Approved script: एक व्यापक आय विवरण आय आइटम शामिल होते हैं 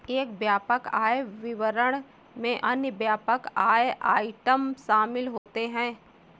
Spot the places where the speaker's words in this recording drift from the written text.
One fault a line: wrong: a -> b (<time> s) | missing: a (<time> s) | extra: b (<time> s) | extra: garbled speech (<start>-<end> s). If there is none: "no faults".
extra: में अन्य व्यापक (2.4 s)